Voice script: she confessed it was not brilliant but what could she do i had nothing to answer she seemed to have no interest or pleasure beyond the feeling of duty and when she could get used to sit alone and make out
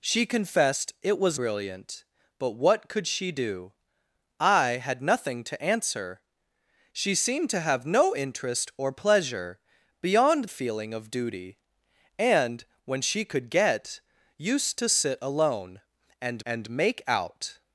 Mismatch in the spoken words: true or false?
true